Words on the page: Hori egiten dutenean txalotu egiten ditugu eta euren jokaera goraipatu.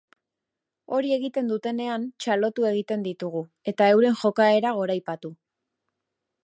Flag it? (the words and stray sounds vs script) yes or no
no